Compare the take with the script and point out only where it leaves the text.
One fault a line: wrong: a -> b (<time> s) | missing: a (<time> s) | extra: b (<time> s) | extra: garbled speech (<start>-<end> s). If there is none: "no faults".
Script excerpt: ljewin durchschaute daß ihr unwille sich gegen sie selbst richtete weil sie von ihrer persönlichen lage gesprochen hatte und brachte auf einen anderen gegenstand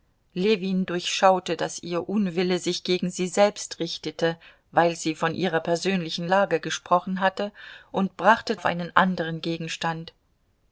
no faults